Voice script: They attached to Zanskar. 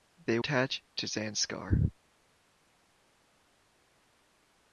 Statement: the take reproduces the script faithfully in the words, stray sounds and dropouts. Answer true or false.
true